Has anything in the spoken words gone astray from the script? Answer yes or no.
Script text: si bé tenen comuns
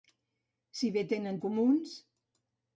no